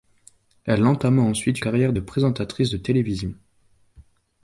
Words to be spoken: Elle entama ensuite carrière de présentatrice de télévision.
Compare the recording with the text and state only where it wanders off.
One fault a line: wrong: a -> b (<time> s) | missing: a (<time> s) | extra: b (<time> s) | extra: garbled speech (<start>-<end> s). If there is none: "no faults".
no faults